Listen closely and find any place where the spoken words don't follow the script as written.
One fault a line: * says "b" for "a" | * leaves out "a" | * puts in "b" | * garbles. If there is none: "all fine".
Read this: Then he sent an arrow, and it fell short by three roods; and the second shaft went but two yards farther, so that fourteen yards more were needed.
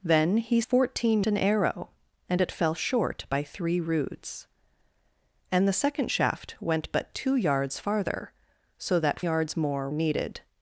* says "fourteen" for "sent"
* leaves out "fourteen"
* leaves out "were"